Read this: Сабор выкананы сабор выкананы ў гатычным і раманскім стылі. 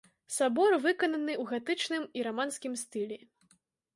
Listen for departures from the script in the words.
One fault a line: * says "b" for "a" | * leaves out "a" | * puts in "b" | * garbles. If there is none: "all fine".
* leaves out "сабор выкананы"